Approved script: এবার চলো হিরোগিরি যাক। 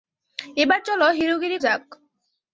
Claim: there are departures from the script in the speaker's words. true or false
false